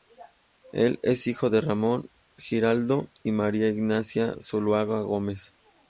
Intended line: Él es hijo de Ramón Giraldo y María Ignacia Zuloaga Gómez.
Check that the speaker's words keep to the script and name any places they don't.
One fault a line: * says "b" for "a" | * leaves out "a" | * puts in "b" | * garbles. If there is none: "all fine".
all fine